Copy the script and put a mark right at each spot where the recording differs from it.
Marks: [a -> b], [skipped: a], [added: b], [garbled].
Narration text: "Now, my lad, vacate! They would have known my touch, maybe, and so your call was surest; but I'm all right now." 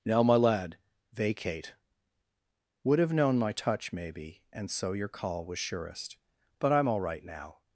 "Now, my lad, vacate! [skipped: They] would have known my touch, maybe, and so your call was surest; but I'm all right now."